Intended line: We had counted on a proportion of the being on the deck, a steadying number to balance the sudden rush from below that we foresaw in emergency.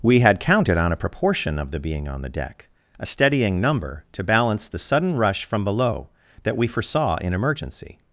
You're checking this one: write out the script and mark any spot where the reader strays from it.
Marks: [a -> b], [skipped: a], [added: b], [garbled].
We had counted on a proportion of the being on the deck, a steadying number to balance the sudden rush from below that we foresaw in emergency.